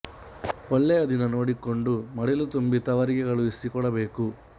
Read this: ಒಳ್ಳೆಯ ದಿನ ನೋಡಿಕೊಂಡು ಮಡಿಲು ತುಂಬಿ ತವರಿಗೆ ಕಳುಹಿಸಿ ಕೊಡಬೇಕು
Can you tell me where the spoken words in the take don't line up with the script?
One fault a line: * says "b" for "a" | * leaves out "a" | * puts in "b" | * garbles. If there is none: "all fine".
all fine